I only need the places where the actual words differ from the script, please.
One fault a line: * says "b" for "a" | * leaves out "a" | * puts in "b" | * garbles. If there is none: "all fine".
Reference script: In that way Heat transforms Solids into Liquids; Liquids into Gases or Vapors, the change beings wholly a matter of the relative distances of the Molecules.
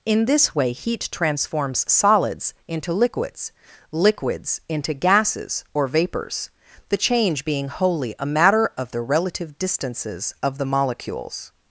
* says "this" for "that"
* says "being" for "beings"